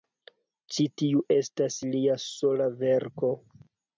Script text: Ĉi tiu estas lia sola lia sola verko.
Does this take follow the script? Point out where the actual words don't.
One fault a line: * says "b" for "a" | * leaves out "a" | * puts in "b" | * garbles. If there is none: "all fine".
* leaves out "lia sola"